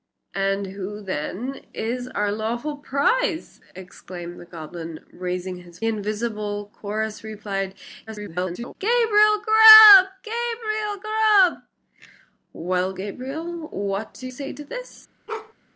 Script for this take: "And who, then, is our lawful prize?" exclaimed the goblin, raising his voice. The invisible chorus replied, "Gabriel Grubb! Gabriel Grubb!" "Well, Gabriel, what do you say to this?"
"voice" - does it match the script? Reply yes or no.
no